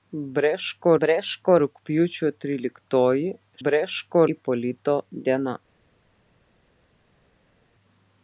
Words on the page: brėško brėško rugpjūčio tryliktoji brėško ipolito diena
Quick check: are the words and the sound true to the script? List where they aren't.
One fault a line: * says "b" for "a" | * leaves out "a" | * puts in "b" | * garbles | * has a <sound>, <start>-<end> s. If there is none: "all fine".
all fine